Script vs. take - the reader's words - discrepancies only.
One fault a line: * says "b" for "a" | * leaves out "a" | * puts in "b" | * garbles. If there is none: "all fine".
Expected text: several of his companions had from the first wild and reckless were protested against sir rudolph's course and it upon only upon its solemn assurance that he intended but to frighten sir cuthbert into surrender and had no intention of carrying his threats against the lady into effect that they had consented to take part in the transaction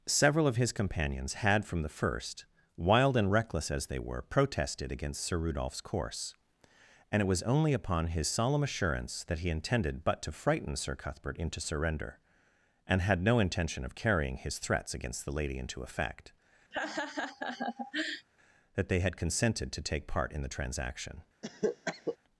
* puts in "as they"
* says "was" for "upon"
* says "his" for "its"